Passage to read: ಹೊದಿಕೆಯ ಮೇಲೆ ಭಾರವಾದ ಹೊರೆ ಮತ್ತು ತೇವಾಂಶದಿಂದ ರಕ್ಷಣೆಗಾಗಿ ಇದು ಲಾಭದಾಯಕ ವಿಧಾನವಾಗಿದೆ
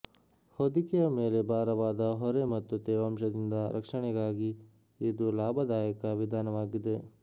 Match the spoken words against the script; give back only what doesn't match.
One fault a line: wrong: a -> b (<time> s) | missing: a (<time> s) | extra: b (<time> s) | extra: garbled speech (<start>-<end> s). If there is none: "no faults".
no faults